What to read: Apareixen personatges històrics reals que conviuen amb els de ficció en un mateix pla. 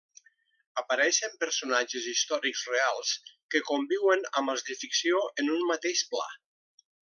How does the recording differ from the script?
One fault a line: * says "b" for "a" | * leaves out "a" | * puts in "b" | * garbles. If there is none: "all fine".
all fine